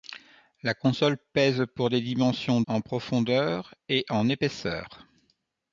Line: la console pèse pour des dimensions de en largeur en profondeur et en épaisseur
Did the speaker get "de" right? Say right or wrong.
wrong